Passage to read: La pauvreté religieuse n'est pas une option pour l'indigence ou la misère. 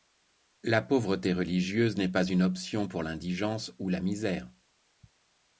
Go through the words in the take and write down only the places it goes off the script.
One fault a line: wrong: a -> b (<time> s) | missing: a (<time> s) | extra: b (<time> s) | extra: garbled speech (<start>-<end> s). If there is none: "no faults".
no faults